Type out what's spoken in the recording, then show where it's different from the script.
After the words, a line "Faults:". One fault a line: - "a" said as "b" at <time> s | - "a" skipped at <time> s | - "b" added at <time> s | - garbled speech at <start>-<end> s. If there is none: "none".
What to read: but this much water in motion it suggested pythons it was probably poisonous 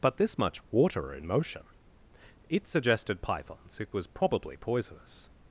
but this much water in motion it suggested pythons it was probably poisonous
Faults:
none